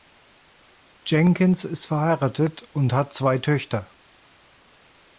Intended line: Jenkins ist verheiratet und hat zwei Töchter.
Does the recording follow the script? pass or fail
pass